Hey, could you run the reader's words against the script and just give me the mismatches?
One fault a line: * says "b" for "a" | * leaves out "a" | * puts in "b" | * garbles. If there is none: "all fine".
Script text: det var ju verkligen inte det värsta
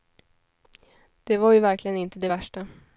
all fine